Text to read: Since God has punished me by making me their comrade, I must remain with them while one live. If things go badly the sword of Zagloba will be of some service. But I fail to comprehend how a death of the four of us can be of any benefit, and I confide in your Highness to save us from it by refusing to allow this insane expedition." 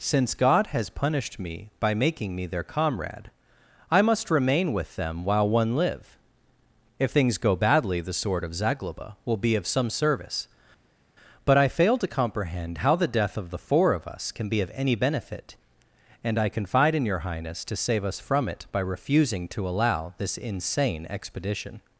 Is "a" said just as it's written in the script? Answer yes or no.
no